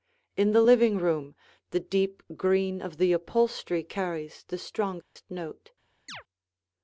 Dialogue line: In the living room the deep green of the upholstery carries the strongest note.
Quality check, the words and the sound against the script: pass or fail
fail